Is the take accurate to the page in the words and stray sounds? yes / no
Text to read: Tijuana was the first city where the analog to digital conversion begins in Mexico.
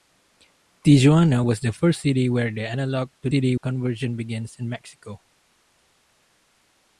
no